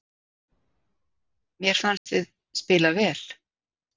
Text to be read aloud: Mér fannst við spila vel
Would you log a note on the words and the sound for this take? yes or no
yes